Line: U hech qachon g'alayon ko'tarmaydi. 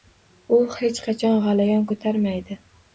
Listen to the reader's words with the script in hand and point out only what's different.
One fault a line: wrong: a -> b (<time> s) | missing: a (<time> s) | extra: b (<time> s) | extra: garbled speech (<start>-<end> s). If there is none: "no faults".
no faults